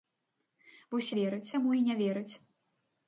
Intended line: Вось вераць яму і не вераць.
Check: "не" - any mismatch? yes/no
no